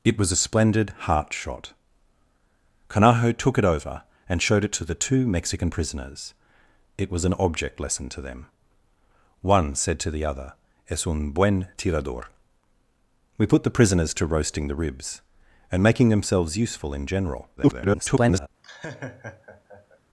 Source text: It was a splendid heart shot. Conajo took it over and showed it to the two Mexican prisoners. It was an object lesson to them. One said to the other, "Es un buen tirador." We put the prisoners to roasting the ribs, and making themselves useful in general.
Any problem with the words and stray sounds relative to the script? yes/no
yes